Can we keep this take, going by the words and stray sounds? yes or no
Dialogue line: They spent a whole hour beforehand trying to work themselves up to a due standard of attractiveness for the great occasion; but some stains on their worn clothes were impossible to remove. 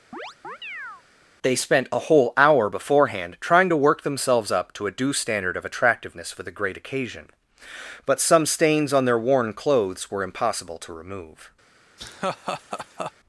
no